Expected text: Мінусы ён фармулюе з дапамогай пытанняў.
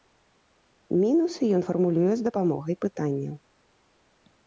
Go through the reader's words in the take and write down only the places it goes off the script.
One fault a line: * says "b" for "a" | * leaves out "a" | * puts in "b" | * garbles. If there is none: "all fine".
all fine